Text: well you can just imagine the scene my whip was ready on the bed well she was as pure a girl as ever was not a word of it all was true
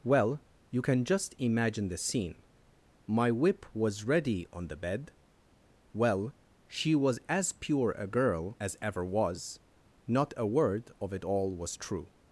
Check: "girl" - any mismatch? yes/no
no